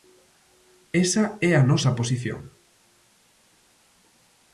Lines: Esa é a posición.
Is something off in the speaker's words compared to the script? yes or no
yes